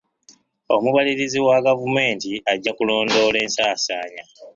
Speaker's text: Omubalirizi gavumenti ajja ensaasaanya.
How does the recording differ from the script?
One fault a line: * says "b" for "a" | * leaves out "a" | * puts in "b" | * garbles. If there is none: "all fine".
* puts in "wa"
* puts in "kulondoola"